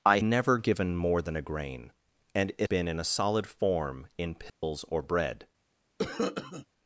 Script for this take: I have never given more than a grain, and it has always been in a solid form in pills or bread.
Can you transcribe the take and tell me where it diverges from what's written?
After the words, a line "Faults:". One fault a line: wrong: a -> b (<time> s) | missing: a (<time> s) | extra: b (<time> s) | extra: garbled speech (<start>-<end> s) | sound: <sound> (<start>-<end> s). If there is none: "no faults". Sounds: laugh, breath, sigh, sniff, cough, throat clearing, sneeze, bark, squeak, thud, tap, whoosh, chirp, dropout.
I never given more than a grain, and it been in a solid form in pills or bread.
Faults:
missing: have (0.2 s)
missing: has always (2.7 s)
sound: dropout (4.5-4.6 s)
sound: cough (6.0-6.7 s)